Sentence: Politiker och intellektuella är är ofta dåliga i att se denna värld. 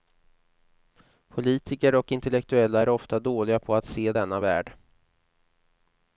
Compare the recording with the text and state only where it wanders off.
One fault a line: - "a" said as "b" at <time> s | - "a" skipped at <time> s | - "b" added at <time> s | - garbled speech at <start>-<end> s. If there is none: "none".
- "är" skipped at 2.9 s
- "i" said as "på" at 3.6 s